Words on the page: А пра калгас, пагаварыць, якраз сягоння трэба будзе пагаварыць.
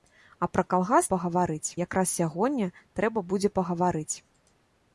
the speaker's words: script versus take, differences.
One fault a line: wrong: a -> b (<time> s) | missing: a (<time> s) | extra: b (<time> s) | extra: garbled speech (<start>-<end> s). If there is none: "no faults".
no faults